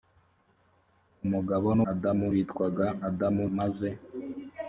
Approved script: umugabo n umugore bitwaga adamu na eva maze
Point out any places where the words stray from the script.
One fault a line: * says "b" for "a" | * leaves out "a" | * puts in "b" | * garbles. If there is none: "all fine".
* says "adamu" for "umugore"
* leaves out "na eva"